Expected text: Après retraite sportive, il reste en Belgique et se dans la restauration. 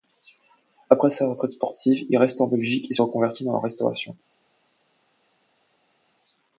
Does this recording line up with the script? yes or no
no